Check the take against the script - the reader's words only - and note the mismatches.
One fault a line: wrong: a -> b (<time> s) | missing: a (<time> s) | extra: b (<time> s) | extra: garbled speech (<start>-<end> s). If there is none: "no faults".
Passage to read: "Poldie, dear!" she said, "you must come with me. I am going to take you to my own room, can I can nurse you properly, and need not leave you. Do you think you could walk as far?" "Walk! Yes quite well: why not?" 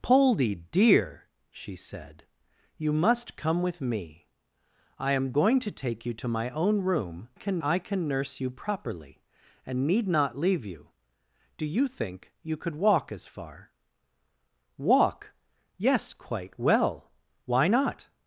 no faults